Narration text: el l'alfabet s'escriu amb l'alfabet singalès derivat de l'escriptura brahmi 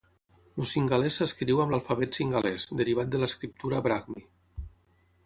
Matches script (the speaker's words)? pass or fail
fail